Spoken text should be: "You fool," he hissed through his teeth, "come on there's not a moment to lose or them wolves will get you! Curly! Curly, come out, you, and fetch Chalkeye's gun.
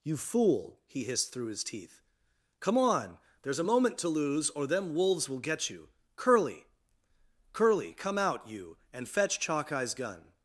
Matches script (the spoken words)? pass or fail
fail